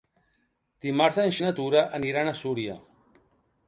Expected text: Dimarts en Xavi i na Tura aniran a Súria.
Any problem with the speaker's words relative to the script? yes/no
yes